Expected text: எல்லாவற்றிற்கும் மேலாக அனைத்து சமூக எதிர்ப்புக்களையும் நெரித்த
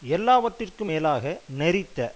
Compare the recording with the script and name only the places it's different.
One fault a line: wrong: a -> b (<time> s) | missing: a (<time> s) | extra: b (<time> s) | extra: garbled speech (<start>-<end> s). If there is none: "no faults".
missing: அனைத்து சமூக எதிர்ப்புக்களையும் (1.2 s)